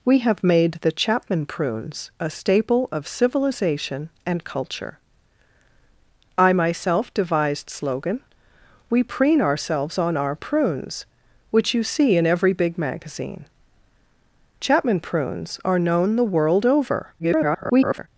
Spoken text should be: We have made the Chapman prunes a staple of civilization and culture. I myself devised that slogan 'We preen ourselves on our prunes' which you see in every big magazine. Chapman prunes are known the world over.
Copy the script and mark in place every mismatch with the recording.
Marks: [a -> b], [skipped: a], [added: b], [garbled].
We have made the Chapman prunes a staple of civilization and culture. I myself devised [skipped: that] slogan 'We preen ourselves on our prunes' which you see in every big magazine. Chapman prunes are known the world over. [garbled]